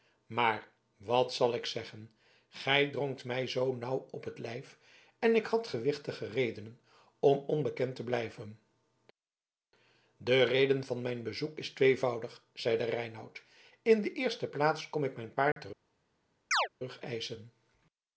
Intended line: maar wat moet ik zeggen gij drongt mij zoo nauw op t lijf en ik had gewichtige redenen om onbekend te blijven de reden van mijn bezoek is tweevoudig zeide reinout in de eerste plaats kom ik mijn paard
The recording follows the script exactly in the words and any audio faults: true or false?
false